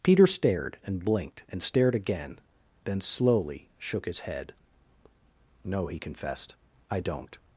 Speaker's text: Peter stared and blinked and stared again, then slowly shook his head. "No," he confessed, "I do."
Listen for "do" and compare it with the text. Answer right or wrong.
wrong